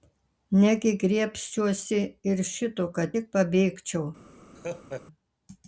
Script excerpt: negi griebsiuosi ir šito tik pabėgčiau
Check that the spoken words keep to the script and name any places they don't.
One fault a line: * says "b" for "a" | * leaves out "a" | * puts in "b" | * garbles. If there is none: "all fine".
* puts in "kad"